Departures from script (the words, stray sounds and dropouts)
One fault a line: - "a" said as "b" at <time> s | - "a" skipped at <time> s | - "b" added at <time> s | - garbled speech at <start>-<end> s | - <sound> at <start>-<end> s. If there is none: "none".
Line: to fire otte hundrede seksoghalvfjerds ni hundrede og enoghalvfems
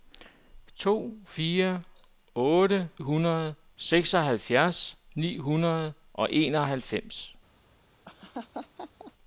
- laugh at 8.0-9.1 s